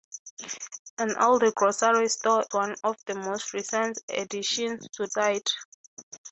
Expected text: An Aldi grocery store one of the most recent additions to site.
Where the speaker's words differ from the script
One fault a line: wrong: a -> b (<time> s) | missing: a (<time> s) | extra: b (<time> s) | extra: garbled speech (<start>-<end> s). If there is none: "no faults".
no faults